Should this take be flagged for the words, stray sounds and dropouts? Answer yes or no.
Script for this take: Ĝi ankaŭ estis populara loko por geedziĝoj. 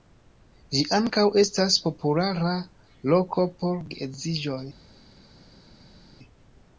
yes